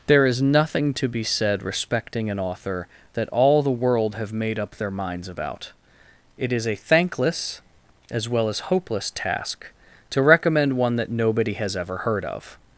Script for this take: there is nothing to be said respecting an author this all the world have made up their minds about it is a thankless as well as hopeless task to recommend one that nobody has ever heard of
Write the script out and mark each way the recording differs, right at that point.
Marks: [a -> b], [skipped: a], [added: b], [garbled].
there is nothing to be said respecting an author [this -> that] all the world have made up their minds about it is a thankless as well as hopeless task to recommend one that nobody has ever heard of